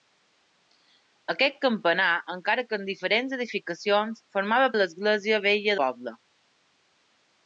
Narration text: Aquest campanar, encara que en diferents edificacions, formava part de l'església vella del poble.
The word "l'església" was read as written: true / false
true